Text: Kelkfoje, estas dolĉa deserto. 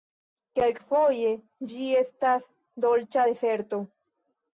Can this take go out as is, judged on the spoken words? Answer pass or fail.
fail